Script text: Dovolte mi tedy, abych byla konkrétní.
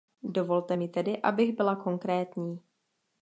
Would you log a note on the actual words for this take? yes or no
no